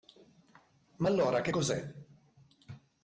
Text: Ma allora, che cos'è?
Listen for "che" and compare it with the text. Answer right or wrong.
right